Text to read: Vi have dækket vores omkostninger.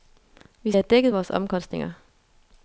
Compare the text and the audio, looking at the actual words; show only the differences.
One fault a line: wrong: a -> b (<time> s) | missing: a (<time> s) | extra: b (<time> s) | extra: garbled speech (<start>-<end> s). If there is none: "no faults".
no faults